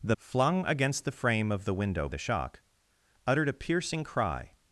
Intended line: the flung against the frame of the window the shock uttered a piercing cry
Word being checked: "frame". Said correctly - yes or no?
yes